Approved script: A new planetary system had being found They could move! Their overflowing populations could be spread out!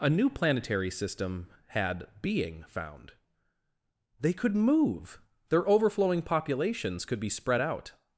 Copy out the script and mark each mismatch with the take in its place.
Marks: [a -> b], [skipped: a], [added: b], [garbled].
A new planetary system had being found They could move! Their overflowing populations could be spread out!